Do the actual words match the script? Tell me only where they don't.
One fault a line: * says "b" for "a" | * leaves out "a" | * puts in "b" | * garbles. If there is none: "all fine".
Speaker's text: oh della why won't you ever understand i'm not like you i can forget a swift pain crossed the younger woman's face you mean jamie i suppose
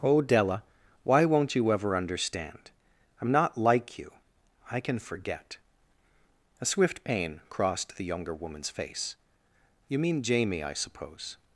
all fine